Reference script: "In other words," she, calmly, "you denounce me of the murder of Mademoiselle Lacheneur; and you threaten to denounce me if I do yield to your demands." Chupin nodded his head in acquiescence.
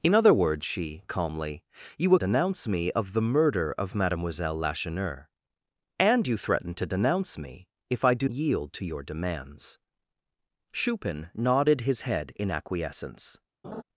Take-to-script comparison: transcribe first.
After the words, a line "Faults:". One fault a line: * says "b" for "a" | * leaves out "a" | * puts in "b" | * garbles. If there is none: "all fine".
"In other words," she, calmly, "you denounce me of the murder of Mademoiselle Lacheneur; and you threaten to denounce me if I do yield to your demands." Chupin nodded his head in acquiescence.
Faults:
all fine